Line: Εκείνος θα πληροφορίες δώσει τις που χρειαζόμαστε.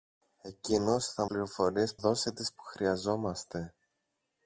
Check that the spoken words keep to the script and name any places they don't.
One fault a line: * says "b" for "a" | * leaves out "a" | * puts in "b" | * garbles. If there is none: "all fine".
all fine